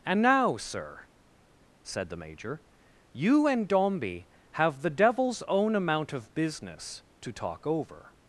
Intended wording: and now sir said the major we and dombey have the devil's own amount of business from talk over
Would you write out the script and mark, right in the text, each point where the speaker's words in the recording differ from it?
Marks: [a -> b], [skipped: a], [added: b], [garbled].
and now sir said the major [we -> you] and dombey have the devil's own amount of business [from -> to] talk over